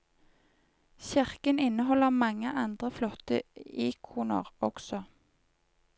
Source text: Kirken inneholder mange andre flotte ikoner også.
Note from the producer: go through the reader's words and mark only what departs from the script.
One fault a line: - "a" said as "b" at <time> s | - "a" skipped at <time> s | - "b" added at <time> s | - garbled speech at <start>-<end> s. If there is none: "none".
none